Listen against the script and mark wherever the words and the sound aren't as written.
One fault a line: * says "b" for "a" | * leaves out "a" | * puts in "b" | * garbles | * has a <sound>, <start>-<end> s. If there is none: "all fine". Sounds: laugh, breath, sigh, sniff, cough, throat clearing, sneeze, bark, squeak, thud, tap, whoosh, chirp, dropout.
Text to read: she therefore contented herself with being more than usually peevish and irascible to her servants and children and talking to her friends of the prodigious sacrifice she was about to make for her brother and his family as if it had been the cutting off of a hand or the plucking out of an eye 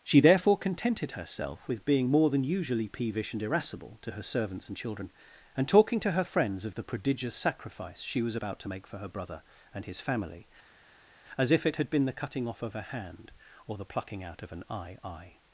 * puts in "eye"